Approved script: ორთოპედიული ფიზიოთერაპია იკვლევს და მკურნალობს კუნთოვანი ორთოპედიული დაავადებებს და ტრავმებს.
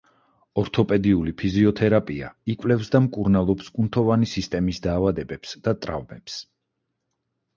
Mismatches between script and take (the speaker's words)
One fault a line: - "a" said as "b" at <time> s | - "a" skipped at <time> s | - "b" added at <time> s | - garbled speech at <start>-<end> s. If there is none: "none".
- "ორთოპედიული" said as "სისტემის" at 4.3 s